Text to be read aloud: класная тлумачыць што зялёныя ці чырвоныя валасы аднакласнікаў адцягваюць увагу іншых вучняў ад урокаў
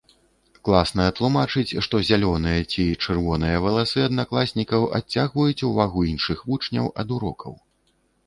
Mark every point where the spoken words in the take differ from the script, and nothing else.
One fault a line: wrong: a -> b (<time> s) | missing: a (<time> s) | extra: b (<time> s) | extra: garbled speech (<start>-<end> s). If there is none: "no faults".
no faults